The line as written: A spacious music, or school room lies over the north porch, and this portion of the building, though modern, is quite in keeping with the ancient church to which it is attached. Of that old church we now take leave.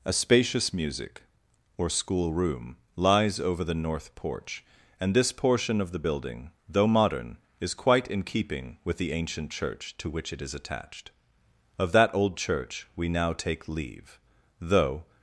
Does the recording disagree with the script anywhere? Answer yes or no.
yes